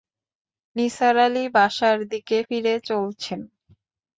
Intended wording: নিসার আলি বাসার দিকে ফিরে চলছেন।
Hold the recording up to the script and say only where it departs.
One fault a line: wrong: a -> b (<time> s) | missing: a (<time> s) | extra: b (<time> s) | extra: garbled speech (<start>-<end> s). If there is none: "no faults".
no faults